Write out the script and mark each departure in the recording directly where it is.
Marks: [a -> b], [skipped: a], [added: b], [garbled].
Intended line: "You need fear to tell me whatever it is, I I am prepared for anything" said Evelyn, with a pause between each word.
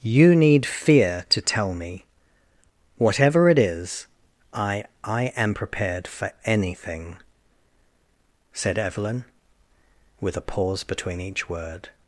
"You need fear to tell me whatever it is, I I am prepared for anything" said Evelyn, with a pause between each word.